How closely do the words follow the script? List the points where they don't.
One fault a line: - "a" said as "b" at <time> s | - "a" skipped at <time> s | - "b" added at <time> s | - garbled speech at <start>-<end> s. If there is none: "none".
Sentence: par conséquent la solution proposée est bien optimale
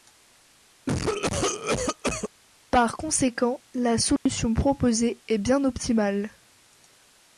none